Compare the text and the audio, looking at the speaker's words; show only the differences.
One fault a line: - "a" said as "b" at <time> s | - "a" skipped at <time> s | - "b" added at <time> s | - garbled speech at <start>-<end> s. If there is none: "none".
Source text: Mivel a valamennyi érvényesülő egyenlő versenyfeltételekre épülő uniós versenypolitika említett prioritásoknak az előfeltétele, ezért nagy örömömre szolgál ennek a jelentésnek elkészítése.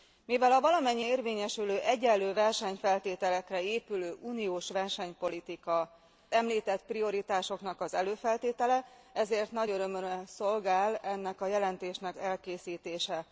none